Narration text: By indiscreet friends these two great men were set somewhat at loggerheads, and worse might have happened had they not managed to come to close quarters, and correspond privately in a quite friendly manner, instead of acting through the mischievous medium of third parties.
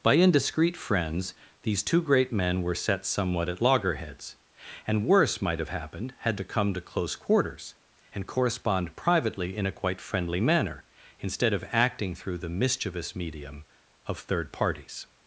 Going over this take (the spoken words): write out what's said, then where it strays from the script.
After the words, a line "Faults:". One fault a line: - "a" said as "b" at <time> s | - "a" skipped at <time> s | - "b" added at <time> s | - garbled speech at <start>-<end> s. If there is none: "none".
By indiscreet friends these two great men were set somewhat at loggerheads, and worse might have happened had to come to close quarters, and correspond privately in a quite friendly manner, instead of acting through the mischievous medium of third parties.
Faults:
- "they not managed" skipped at 6.4 s